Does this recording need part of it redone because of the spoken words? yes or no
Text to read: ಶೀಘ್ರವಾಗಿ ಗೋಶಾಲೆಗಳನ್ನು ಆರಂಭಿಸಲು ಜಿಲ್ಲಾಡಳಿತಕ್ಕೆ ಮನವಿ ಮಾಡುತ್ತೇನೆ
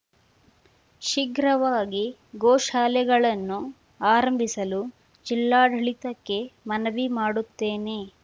no